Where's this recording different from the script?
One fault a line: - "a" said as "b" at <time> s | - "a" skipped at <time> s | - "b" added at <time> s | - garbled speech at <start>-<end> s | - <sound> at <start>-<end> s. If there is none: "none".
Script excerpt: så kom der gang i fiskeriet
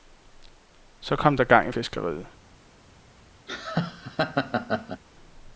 - laugh at 3.5-5.0 s